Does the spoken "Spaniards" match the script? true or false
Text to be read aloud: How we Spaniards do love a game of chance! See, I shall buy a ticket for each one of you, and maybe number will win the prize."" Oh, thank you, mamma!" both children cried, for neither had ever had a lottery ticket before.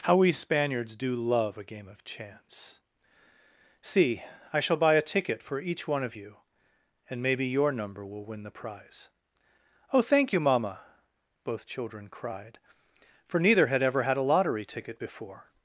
true